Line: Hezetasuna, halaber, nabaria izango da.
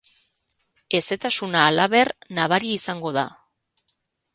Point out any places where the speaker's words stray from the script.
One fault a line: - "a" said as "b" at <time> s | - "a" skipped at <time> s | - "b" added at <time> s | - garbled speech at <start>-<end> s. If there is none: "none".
none